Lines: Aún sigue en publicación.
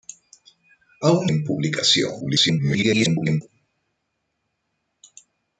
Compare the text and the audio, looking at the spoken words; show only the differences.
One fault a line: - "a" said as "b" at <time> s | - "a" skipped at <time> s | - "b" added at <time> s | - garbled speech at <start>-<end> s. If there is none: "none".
- "sigue" skipped at 1.3 s
- garbled speech at 2.2-3.4 s